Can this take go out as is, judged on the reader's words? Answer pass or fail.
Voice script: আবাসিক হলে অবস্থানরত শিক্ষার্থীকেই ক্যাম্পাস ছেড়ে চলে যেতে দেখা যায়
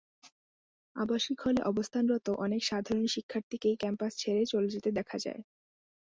fail